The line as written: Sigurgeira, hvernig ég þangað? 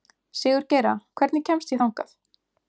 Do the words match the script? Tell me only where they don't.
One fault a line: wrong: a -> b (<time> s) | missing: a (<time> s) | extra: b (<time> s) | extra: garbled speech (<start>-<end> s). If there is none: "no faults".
extra: kemst (1.5 s)